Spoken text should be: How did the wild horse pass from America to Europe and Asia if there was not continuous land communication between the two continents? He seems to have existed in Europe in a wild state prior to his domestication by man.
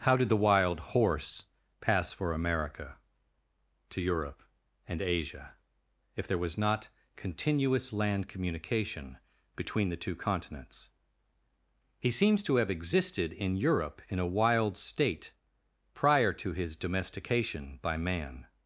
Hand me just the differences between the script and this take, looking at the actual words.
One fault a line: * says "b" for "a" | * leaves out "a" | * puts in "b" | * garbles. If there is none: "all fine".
* says "for" for "from"